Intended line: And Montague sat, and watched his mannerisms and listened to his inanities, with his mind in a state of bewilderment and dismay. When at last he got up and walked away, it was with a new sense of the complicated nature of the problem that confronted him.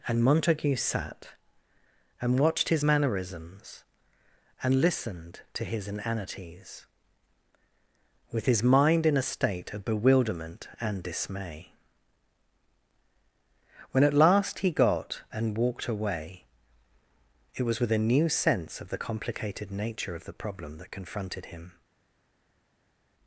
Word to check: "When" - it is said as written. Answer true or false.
true